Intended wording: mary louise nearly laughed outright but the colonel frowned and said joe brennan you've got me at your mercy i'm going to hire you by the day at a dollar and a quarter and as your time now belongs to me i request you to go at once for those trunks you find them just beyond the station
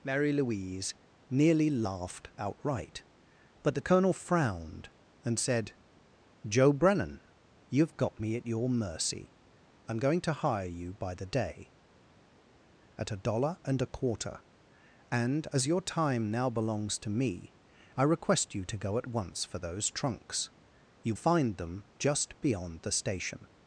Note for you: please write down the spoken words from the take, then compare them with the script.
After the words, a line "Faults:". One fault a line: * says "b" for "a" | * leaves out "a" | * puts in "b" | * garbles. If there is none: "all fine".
mary louise nearly laughed outright but the colonel frowned and said joe brennan you've got me at your mercy i'm going to hire you by the day at a dollar and a quarter and as your time now belongs to me i request you to go at once for those trunks you find them just beyond the station
Faults:
all fine